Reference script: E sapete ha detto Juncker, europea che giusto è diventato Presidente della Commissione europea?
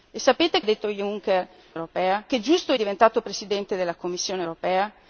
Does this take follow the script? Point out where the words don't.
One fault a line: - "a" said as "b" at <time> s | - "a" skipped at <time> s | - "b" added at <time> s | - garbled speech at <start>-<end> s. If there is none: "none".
none